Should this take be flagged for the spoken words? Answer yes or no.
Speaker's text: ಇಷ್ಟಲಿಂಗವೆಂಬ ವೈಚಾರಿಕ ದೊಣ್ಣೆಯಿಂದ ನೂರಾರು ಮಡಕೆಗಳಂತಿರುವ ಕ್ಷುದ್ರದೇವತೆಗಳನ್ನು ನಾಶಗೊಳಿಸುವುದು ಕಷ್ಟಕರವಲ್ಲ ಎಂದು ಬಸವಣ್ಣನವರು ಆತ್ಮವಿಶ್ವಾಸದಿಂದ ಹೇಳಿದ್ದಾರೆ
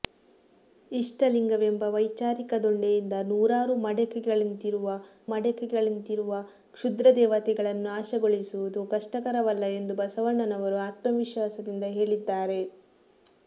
yes